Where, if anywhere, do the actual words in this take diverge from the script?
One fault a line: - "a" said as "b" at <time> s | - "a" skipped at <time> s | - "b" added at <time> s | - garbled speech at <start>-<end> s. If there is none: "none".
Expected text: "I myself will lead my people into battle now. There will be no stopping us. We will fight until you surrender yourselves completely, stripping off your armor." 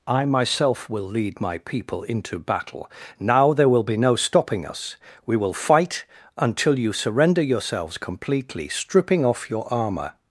none